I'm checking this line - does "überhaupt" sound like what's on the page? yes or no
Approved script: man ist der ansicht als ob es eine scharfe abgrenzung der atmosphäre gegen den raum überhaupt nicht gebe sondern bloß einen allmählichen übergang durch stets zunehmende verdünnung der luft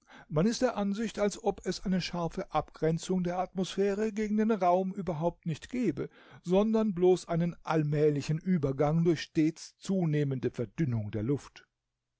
yes